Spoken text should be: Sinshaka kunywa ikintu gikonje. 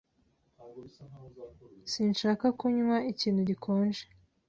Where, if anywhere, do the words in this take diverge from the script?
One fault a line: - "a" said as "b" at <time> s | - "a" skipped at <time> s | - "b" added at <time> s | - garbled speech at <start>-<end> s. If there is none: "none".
none